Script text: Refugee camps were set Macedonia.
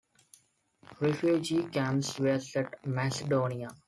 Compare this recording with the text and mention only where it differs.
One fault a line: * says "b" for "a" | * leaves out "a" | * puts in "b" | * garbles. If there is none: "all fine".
all fine